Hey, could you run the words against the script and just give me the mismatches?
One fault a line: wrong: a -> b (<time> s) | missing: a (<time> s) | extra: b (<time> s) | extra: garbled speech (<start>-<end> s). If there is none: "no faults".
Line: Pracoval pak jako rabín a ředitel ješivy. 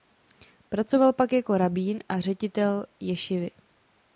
no faults